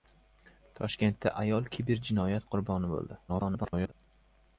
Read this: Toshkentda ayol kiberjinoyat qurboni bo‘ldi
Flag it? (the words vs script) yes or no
yes